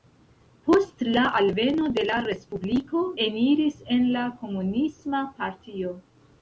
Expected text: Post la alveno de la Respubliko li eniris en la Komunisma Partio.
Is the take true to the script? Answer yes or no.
no